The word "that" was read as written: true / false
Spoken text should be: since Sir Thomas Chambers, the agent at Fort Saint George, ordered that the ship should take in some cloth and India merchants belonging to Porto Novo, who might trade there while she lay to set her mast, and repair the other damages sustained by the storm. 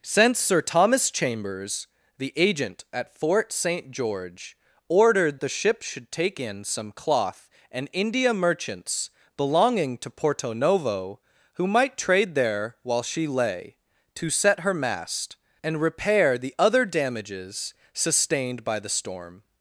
false